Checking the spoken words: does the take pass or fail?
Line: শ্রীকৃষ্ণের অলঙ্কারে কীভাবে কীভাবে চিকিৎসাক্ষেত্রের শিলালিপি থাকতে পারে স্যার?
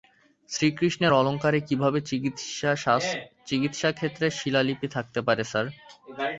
fail